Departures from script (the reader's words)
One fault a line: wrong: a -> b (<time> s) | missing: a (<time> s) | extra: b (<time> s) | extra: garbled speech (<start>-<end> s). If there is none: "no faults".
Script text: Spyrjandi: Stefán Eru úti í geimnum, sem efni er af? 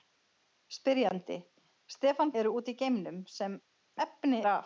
no faults